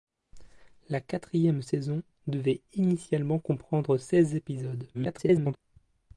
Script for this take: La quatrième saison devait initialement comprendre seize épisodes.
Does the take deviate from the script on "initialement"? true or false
false